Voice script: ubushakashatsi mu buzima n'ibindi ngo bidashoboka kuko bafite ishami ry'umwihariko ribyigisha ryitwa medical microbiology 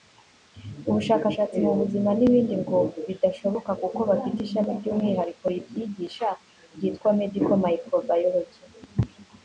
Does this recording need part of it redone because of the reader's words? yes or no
no